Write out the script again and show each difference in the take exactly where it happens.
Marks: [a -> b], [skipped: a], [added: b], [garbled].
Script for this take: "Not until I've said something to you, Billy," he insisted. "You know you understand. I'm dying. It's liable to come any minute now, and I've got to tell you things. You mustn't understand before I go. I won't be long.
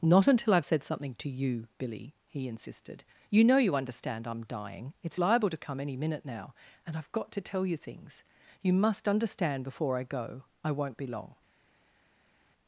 "Not until I've said something to you, Billy," he insisted. "You know you understand. I'm dying. It's liable to come any minute now, and I've got to tell you things. You [mustn't -> must] understand before I go. I won't be long.